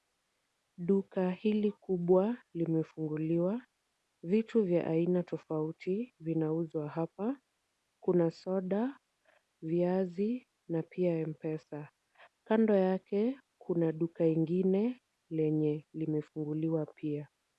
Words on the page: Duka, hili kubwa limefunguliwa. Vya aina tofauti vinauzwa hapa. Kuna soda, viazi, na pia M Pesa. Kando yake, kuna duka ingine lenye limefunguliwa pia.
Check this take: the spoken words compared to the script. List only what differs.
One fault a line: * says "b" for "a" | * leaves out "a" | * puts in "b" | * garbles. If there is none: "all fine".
* puts in "Vitu"